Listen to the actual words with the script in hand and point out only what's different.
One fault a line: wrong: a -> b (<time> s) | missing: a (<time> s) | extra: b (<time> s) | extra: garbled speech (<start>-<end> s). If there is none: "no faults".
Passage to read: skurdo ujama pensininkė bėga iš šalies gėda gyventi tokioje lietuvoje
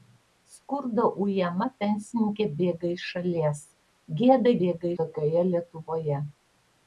wrong: gyventi -> bėga (4.6 s)